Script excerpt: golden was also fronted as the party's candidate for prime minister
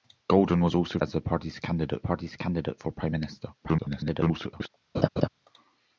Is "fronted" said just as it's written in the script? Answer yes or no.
no